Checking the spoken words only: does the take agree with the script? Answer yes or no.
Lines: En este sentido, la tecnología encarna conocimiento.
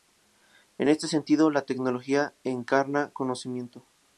yes